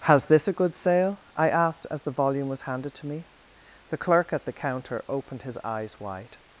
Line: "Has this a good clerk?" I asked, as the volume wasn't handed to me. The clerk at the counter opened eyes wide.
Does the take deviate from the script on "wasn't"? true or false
true